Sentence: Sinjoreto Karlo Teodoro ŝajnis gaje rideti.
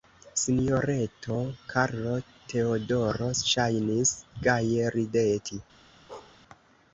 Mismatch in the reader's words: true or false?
false